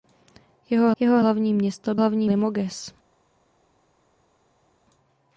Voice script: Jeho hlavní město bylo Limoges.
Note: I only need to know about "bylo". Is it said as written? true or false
false